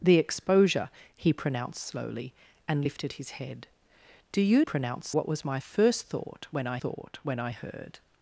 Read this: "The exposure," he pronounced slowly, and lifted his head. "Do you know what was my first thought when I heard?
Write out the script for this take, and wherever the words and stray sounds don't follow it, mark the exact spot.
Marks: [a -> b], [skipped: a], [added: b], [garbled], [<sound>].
"The exposure," he pronounced slowly, and lifted his head. "Do you [know -> pronounced] what was my first thought when I [added: thought when I] heard?